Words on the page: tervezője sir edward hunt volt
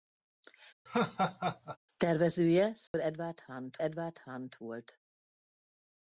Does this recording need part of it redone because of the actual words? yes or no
yes